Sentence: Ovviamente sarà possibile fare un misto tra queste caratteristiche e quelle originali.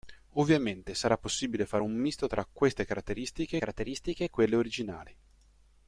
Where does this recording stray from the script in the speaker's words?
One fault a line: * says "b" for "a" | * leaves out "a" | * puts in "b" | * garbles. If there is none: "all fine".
* puts in "caratteristiche"